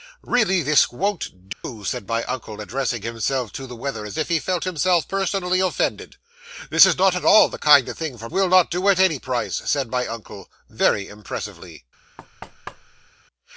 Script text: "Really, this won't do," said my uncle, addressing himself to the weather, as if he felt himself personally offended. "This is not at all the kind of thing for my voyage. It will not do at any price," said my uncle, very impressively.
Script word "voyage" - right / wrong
wrong